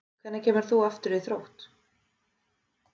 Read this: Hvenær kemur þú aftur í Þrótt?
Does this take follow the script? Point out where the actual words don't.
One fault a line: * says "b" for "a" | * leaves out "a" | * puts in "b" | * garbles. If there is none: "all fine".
all fine